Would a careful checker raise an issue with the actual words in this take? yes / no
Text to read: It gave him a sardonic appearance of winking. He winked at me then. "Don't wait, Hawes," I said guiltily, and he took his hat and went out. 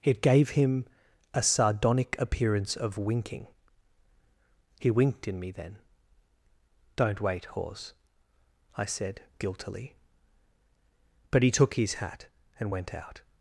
yes